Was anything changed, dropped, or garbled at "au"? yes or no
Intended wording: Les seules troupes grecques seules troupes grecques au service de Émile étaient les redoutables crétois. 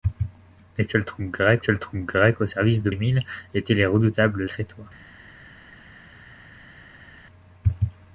no